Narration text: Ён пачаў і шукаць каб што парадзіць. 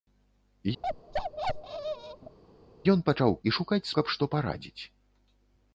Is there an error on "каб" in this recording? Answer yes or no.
no